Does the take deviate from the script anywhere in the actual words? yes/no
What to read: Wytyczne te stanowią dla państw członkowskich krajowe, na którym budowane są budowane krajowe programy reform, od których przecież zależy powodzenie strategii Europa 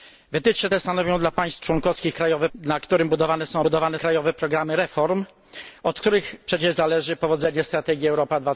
no